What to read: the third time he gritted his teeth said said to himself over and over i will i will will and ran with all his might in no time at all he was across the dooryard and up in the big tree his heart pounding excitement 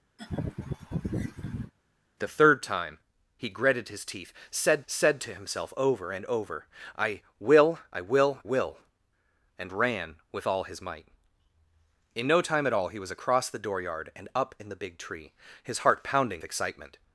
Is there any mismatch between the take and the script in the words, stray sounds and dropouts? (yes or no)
yes